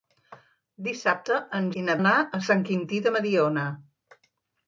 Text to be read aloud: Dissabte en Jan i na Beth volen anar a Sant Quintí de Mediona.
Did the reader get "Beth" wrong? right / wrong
wrong